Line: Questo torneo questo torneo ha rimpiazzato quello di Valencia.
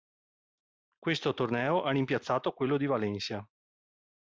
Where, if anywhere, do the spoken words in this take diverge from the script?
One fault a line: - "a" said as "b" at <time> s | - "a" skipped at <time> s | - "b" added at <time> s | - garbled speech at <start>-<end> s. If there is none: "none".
- "questo torneo" skipped at 1.8 s